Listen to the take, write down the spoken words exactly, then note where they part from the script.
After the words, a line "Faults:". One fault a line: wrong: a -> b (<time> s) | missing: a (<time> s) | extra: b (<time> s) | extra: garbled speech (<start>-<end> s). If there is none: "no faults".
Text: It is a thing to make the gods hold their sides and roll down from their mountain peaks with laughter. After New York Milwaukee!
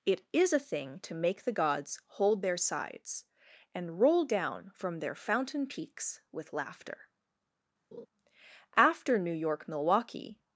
It is a thing to make the gods hold their sides and roll down from their fountain peaks with laughter. After New York Milwaukee!
Faults:
wrong: mountain -> fountain (5.1 s)